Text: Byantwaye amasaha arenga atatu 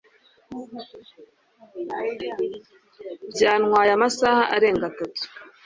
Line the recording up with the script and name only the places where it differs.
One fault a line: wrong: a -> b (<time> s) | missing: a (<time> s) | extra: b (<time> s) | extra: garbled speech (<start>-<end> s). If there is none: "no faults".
no faults